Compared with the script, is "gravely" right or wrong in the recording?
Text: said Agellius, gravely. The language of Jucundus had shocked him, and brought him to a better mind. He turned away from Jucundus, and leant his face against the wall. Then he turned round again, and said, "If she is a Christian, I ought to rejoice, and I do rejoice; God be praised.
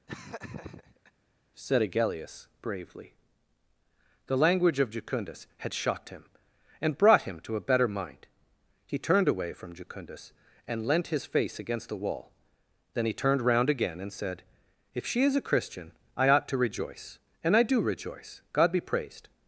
wrong